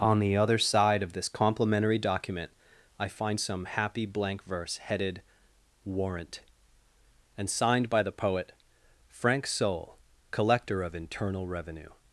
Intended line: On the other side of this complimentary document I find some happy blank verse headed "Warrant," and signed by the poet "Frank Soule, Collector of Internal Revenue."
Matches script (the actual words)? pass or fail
pass